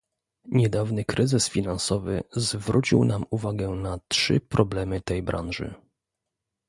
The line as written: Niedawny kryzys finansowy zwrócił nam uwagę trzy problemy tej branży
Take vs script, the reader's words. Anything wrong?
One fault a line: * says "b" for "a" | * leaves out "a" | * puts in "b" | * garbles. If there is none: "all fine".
* puts in "na"